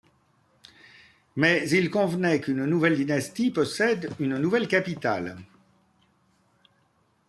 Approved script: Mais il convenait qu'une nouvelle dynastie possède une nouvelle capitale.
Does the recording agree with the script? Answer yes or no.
yes